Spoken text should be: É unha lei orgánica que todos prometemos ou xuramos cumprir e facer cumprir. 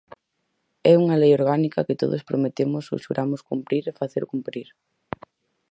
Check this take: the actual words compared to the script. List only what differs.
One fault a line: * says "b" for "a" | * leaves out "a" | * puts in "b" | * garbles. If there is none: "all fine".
all fine